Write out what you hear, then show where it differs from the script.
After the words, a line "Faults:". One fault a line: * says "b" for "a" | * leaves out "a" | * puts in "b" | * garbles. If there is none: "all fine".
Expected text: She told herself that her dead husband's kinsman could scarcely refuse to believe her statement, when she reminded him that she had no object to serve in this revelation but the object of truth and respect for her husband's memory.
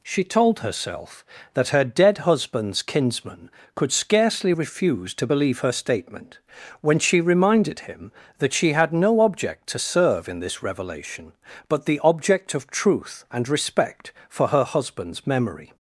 She told herself that her dead husband's kinsman could scarcely refuse to believe her statement, when she reminded him that she had no object to serve in this revelation but the object of truth and respect for her husband's memory.
Faults:
all fine